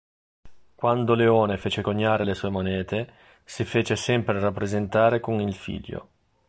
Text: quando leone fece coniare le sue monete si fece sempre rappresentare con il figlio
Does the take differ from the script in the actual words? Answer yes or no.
no